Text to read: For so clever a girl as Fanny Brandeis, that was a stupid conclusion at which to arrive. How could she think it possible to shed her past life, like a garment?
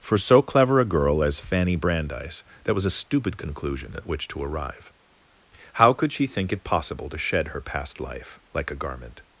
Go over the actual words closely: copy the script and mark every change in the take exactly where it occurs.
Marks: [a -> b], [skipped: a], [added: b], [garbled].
For so clever a girl as Fanny Brandeis, that was a stupid conclusion at which to arrive. How could she think it possible to shed her past life, like a garment?